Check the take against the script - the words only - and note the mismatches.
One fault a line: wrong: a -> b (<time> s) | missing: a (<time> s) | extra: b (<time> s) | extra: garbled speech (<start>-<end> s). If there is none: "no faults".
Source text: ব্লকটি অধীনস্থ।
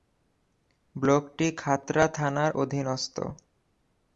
extra: খাতড়া থানার (1.6 s)